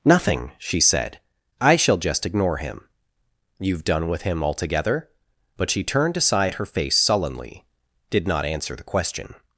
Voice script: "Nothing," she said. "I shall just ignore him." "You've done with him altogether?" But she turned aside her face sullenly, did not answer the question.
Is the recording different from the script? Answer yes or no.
no